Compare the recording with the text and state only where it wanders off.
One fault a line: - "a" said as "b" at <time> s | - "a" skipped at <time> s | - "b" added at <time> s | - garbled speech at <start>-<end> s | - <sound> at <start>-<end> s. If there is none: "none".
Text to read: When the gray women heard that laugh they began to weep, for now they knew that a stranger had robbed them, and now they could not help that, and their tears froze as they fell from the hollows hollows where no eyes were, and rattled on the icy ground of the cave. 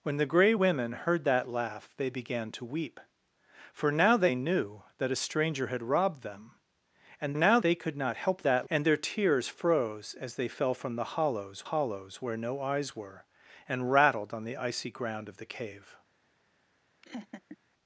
- laugh at 17.0-17.6 s